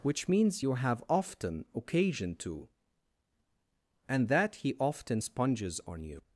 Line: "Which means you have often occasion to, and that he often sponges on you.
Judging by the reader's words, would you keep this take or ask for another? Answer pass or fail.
pass